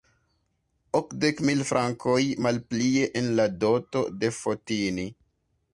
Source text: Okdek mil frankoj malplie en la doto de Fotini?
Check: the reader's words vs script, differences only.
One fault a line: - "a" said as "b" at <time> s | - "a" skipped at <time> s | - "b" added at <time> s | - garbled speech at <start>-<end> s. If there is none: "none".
none